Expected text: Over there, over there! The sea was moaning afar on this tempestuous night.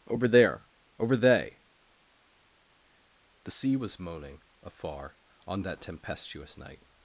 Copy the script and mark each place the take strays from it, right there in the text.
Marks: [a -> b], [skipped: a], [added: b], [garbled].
Over there, over [there! -> they] The sea was moaning afar on [this -> that] tempestuous night.